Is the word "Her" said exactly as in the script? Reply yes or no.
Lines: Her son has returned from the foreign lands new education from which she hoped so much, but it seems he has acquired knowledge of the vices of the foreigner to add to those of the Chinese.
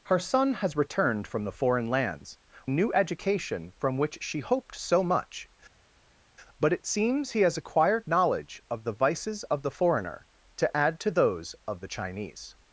yes